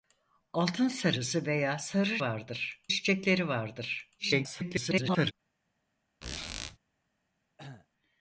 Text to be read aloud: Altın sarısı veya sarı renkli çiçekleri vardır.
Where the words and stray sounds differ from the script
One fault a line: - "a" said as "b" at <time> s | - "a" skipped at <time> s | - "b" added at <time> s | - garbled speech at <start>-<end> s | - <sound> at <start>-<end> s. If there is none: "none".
- "renkli" said as "vardır" at 2.2 s
- garbled speech at 4.2-5.3 s
- squeak at 6.2-6.8 s
- cough at 7.6-7.9 s